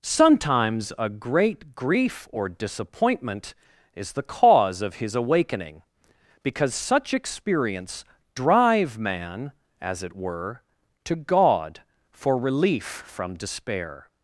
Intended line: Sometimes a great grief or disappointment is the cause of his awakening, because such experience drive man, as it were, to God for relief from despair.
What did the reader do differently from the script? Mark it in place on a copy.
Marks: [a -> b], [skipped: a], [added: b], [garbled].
Sometimes a great grief or disappointment is the cause of his awakening, because such experience drive man, as it were, to God for relief from despair.